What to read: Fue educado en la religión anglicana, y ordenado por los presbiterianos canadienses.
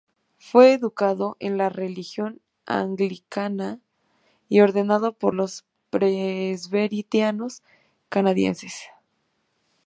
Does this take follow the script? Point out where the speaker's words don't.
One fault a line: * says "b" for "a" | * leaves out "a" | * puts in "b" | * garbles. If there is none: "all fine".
all fine